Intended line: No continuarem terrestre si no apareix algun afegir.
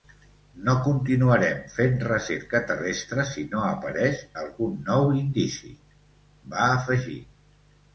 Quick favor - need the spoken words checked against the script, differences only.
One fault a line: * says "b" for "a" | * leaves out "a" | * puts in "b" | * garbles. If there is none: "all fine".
* puts in "fent recerca"
* puts in "nou indici va"